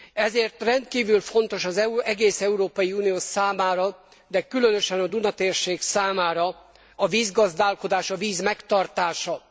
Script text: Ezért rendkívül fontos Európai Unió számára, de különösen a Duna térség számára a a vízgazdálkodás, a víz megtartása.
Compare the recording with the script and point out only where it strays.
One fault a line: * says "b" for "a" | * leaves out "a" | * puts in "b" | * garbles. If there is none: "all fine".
* puts in "az egész"
* leaves out "a"